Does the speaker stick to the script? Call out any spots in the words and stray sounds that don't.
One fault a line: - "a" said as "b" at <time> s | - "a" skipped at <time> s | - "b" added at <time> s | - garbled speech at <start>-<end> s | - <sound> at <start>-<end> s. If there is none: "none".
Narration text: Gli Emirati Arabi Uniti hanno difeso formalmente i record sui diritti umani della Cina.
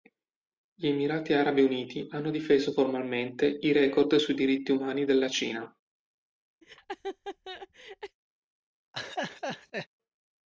- laugh at 6.6-8.2 s
- laugh at 8.9-9.9 s